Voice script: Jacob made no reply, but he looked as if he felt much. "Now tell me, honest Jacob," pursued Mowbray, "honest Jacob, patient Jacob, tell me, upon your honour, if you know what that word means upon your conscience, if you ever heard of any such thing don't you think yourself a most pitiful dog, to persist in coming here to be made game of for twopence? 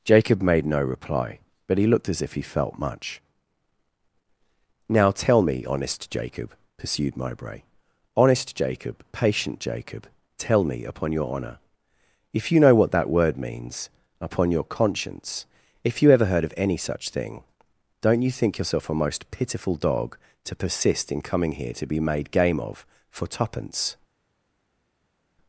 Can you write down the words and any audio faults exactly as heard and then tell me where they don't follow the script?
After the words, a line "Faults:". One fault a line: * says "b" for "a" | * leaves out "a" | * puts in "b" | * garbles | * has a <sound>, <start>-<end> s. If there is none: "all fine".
Jacob made no reply, but he looked as if he felt much. "Now tell me, honest Jacob," pursued Mowbray, "honest Jacob, patient Jacob, tell me, upon your honour, if you know what that word means upon your conscience, if you ever heard of any such thing don't you think yourself a most pitiful dog, to persist in coming here to be made game of for twopence?
Faults:
all fine